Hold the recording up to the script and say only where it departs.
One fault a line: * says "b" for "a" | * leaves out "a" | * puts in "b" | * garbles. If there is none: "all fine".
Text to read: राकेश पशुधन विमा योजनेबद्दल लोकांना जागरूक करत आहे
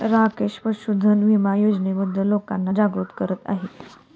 all fine